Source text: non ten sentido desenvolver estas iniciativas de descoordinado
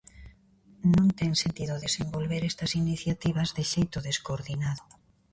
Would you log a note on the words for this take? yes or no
yes